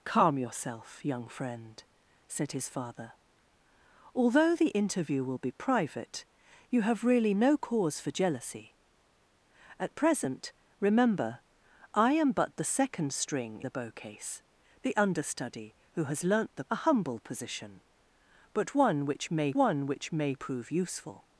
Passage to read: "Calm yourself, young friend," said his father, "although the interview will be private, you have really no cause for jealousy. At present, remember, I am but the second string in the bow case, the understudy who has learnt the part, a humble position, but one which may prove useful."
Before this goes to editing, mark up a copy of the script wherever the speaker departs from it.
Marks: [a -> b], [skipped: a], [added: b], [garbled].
"Calm yourself, young friend," said his father, "although the interview will be private, you have really no cause for jealousy. At present, remember, I am but the second string [skipped: in] the bow case, the understudy who has learnt the [skipped: part,] a humble position, but one which may [added: one which may] prove useful."